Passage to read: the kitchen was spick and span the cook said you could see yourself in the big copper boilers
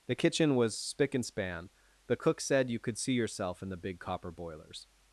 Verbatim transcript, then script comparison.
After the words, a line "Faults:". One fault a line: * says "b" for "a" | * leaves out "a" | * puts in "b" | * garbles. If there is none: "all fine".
the kitchen was spick and span the cook said you could see yourself in the big copper boilers
Faults:
all fine